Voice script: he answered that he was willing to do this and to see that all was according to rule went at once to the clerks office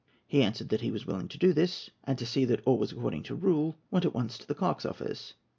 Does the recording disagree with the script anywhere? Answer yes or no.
no